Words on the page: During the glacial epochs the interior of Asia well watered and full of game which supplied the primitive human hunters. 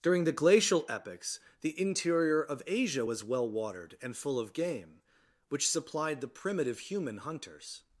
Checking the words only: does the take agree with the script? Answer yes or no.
no